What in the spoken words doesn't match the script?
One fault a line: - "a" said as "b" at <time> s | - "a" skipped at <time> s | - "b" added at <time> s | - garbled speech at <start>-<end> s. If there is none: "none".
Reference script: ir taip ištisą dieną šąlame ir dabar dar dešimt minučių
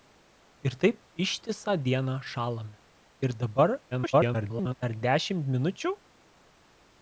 - garbled speech at 3.9-4.7 s